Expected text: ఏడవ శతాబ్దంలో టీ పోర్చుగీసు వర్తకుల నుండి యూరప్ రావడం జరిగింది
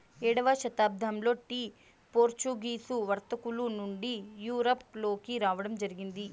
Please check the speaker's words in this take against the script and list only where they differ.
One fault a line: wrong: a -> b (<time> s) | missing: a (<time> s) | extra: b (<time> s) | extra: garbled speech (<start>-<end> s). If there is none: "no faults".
extra: లోకి (5.0 s)